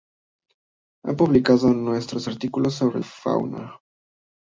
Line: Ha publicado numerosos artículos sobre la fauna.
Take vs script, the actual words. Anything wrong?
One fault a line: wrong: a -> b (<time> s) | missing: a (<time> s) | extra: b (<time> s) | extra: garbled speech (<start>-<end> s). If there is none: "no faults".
missing: la (3.0 s)